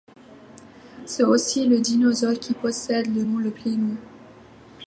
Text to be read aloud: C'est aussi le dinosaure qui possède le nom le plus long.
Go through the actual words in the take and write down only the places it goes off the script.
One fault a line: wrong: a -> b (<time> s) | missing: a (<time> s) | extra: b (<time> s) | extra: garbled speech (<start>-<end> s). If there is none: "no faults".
no faults